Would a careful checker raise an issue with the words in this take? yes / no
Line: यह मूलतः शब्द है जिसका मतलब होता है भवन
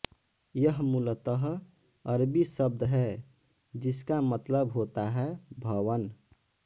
yes